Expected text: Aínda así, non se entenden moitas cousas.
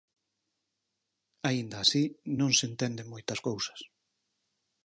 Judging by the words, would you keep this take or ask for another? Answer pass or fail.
pass